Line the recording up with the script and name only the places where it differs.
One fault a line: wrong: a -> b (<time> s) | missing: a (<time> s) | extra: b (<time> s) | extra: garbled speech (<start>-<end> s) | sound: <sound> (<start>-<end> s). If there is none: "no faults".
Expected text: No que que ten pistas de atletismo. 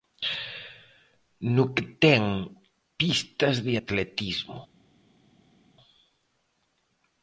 missing: que (1.8 s)